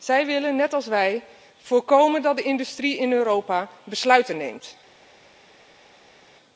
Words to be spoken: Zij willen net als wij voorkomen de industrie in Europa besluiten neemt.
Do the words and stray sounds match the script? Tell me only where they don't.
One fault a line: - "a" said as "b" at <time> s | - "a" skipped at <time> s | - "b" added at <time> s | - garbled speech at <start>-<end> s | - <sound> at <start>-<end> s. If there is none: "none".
- "dat" added at 2.2 s